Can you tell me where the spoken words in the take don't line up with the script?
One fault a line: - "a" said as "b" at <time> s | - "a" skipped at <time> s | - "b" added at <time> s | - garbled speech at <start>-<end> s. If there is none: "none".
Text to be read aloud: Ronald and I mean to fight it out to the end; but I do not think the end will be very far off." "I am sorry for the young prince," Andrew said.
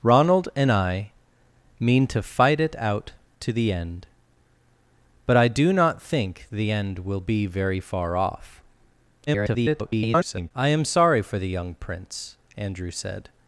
- garbled speech at 9.3-10.5 s